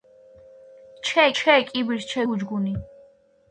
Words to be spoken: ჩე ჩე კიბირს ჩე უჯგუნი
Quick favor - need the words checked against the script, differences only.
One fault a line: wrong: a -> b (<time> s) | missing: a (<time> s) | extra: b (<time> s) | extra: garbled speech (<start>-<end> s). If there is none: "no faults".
no faults